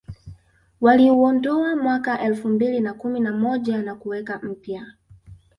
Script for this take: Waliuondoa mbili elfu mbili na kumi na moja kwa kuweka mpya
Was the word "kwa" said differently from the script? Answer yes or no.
yes